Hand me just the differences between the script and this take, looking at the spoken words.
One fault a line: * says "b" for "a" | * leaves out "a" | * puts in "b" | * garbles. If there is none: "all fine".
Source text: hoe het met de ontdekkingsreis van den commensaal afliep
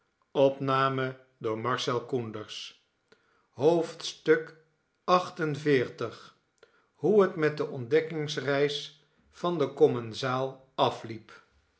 all fine